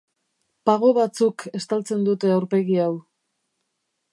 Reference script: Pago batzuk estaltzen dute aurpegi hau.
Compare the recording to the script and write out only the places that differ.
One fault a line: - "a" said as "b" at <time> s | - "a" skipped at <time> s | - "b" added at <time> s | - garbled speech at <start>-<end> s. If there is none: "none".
none